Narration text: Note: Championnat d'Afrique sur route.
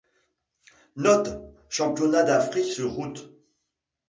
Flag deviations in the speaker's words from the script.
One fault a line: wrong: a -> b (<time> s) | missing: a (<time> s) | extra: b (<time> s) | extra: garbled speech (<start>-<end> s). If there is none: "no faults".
no faults